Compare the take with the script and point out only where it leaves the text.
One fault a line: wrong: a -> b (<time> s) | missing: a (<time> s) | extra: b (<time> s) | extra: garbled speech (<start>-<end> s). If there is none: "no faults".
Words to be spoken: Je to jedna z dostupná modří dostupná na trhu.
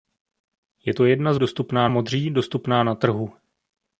no faults